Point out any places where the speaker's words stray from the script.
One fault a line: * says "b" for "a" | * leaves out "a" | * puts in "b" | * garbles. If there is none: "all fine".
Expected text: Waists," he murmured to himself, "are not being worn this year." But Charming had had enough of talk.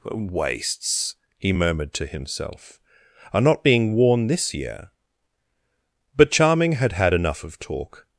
all fine